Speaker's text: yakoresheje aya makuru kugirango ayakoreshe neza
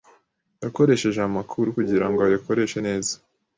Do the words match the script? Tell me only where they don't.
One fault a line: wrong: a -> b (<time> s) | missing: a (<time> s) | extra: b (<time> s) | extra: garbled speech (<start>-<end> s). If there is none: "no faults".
no faults